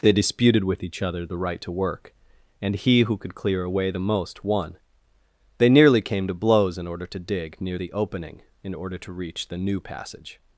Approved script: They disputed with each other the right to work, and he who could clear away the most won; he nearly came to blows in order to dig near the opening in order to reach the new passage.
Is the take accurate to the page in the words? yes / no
no